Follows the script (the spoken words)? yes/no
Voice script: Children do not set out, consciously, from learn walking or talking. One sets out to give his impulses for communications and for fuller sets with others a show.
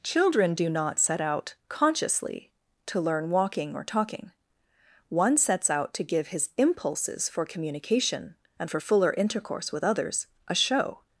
no